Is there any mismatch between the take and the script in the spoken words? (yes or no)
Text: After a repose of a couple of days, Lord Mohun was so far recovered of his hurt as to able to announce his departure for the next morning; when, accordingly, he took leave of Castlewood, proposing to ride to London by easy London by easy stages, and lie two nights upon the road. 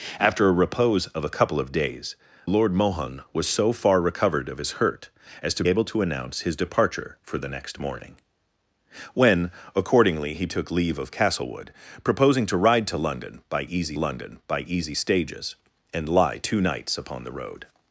no